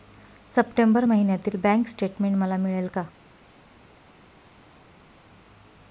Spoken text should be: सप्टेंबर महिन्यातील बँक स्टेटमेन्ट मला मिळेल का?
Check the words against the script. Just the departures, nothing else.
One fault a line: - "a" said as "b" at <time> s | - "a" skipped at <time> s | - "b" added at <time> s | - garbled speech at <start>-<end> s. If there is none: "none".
none